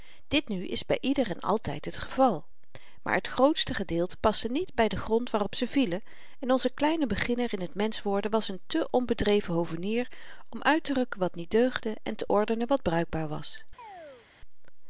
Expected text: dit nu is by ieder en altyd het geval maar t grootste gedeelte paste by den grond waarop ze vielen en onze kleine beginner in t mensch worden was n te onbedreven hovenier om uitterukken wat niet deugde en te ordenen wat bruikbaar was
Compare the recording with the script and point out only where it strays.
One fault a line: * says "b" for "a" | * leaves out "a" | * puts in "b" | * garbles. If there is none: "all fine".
* puts in "niet"